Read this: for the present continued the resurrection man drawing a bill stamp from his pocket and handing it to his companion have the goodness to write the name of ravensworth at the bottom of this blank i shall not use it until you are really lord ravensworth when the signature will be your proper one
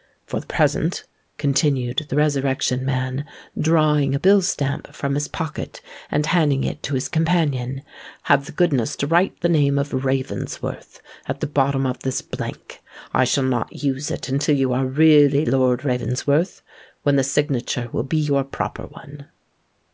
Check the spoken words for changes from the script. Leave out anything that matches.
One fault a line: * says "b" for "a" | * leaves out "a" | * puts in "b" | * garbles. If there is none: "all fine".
all fine